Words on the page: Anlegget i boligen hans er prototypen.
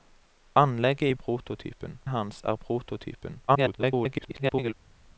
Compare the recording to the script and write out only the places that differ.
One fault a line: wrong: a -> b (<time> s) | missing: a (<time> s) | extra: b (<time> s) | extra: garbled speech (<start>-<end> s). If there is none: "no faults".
wrong: boligen -> prototypen (1.1 s)
extra: garbled speech (3.5-4.7 s)